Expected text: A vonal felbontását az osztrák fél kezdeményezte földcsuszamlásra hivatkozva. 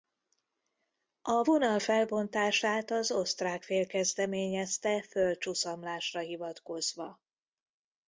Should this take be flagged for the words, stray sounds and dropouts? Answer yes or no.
no